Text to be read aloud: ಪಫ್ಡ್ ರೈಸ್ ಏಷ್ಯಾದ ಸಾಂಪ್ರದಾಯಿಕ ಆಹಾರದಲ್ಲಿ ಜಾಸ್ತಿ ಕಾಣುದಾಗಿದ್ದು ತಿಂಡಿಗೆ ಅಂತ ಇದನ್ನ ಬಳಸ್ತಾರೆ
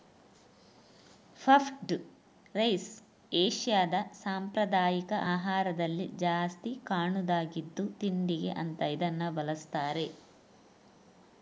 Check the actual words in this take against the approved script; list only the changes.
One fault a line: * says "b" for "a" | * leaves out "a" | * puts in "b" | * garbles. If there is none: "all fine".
all fine